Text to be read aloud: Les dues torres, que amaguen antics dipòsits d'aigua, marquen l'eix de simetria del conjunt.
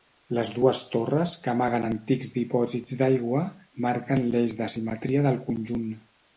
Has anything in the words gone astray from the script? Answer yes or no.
no